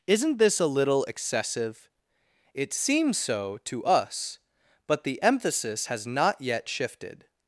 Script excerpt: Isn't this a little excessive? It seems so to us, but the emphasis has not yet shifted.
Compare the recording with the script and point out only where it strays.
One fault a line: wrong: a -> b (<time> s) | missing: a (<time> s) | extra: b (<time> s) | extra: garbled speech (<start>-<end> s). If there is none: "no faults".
no faults